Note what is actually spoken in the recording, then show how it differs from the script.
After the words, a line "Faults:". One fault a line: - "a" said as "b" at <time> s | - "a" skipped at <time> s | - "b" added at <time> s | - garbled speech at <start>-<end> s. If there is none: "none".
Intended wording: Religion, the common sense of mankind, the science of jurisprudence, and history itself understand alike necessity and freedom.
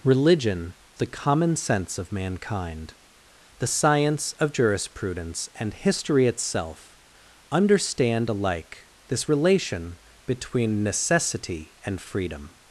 Religion, the common sense of mankind, the science of jurisprudence, and history itself understand alike this relation between necessity and freedom.
Faults:
- "this relation between" added at 9.1 s